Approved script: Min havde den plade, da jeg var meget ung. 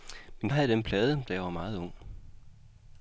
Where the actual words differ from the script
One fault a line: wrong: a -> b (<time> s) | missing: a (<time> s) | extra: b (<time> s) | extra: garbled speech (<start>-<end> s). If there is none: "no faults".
no faults